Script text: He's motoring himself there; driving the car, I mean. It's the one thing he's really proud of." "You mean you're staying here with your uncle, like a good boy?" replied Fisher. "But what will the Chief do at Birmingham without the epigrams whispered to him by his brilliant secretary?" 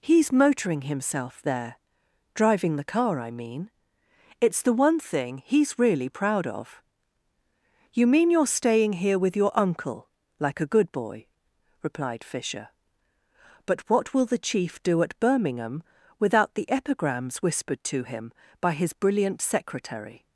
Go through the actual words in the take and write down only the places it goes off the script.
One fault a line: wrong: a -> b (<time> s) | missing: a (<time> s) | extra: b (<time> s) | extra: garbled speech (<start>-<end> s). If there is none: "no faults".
no faults